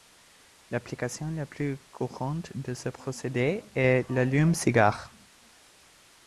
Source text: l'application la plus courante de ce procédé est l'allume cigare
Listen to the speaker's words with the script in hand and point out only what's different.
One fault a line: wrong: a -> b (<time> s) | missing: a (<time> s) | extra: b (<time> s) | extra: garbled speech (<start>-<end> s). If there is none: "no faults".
no faults